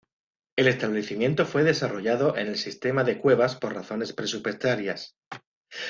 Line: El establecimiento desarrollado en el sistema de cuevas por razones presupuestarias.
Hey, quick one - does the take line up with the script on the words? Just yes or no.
no